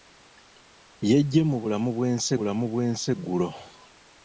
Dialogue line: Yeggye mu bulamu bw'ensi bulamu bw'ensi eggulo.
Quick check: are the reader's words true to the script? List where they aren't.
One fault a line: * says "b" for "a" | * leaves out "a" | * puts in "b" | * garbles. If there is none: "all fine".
all fine